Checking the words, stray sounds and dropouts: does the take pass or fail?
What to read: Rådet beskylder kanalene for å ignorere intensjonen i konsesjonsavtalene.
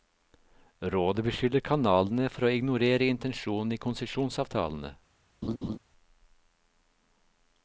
fail